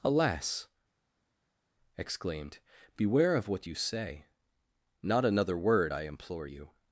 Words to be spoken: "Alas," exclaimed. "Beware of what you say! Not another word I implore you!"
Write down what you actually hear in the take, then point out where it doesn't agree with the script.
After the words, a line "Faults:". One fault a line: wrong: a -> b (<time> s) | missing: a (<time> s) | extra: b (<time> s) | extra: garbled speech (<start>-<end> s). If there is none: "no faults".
"Alas," exclaimed. "Beware of what you say! Not another word I implore you!"
Faults:
no faults